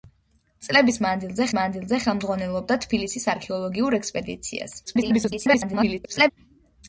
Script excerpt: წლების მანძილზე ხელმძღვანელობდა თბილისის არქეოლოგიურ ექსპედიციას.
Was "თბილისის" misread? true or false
false